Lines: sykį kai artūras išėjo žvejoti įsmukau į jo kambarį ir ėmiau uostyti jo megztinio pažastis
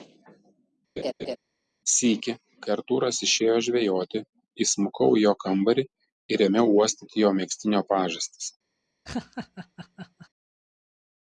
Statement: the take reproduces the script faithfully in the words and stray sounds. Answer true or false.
false